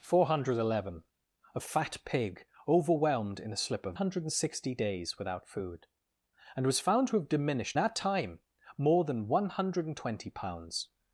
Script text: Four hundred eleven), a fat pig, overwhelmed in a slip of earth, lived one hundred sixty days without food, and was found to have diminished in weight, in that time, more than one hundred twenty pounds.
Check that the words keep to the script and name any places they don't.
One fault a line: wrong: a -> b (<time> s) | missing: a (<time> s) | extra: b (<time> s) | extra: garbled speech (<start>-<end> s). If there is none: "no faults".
missing: earth lived one (4.0 s)
missing: in weight in (7.8 s)